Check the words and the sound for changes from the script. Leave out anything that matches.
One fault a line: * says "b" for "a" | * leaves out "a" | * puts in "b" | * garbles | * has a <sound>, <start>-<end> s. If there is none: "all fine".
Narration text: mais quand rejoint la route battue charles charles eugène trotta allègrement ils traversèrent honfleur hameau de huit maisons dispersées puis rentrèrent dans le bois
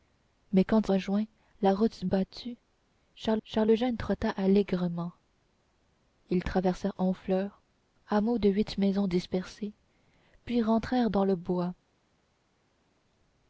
all fine